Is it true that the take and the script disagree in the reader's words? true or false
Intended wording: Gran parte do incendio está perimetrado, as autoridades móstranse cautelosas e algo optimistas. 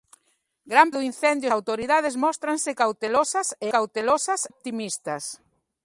true